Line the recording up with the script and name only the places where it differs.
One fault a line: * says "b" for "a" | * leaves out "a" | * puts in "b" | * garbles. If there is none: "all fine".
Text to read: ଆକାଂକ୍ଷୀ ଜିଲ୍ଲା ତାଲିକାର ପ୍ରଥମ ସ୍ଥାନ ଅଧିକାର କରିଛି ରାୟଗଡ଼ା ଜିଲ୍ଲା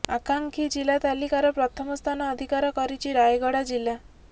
all fine